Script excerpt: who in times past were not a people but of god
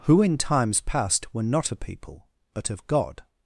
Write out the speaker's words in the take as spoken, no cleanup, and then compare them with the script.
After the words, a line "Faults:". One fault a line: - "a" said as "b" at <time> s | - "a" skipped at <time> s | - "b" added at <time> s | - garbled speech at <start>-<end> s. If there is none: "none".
who in times past were not a people but of god
Faults:
none